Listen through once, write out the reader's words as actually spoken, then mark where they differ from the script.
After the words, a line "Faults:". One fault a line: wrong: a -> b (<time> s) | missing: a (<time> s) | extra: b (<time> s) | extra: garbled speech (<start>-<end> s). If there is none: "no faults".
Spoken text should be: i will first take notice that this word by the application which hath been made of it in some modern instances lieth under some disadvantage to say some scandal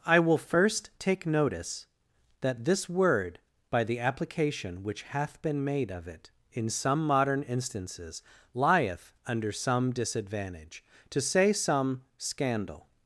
i will first take notice that this word by the application which hath been made of it in some modern instances lieth under some disadvantage to say some scandal
Faults:
no faults